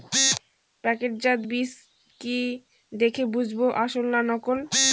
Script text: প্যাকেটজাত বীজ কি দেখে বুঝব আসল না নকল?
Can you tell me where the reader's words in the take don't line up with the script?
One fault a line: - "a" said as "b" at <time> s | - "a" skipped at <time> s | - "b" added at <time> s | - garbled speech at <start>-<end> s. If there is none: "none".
none